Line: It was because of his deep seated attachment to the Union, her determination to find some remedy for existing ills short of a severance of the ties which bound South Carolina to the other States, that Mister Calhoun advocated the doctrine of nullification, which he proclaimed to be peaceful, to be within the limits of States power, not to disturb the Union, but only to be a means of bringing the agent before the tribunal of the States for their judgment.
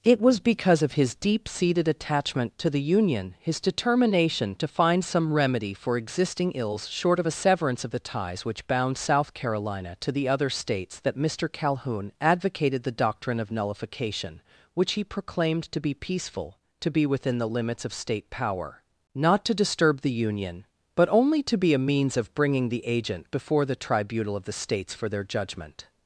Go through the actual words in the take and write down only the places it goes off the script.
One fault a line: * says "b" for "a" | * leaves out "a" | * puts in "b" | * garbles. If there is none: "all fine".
* says "his" for "her"
* says "State" for "States"